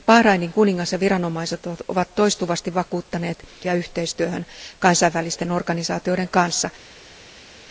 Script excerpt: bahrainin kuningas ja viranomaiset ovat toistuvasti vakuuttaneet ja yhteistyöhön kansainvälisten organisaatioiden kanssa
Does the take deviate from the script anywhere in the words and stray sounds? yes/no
no